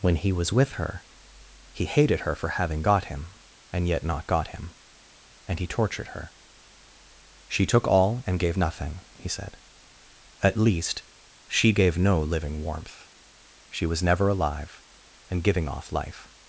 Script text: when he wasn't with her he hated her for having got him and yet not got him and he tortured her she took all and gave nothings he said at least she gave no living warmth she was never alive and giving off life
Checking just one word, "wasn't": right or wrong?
wrong